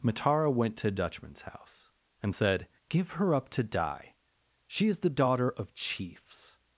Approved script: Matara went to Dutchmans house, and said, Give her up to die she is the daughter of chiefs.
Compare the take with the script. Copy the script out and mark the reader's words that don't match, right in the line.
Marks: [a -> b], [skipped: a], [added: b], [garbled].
Matara went to Dutchmans house, and said, Give her up to die she is the daughter of chiefs.